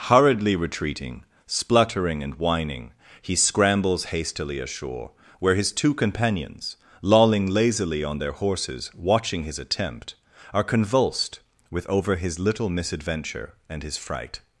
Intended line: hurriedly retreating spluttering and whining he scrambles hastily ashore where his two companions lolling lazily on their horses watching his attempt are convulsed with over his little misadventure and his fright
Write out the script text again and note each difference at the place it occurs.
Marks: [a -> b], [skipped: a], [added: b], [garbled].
hurriedly retreating spluttering and whining he scrambles hastily ashore where his two companions lolling lazily on their horses watching his attempt are convulsed with over his little misadventure and his fright